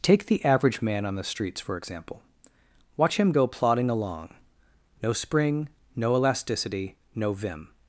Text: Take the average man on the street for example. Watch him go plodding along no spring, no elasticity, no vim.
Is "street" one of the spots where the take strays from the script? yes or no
yes